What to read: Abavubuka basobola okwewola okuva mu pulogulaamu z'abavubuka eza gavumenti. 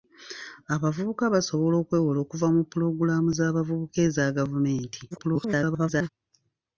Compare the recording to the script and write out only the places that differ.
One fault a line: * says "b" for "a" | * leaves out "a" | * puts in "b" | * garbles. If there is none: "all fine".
* garbles